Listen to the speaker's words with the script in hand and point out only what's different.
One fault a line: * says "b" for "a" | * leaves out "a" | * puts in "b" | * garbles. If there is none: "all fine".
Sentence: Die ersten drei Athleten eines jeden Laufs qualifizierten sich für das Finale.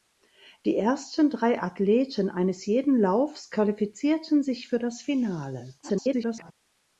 * garbles